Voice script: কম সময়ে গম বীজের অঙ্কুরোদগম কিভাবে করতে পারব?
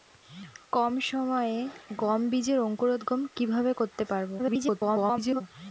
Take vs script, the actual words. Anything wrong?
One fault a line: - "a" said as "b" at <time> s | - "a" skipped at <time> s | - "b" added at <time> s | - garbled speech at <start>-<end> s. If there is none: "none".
- garbled speech at 4.4-5.4 s